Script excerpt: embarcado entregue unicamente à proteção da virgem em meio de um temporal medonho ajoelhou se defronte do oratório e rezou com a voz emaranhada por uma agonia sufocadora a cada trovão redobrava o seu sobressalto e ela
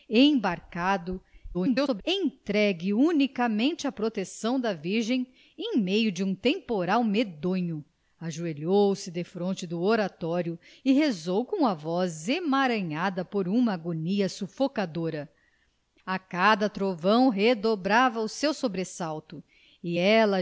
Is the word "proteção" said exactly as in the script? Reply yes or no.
yes